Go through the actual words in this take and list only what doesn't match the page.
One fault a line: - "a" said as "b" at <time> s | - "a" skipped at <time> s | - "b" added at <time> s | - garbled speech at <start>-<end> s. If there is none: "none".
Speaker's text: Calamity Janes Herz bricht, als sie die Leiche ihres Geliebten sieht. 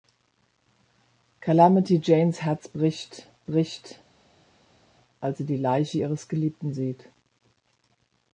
- "bricht" added at 3.4 s